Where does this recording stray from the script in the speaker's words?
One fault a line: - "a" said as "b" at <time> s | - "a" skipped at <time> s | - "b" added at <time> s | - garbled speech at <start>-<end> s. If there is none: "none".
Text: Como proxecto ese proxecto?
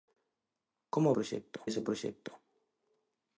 none